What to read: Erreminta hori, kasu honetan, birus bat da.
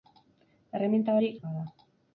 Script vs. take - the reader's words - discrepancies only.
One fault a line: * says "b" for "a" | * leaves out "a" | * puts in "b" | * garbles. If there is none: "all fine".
* leaves out "kasu honetan birus"